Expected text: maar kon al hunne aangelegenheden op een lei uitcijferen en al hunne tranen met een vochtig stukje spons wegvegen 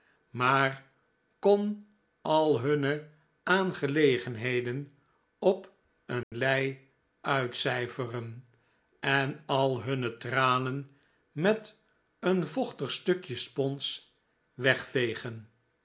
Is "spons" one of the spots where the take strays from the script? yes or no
no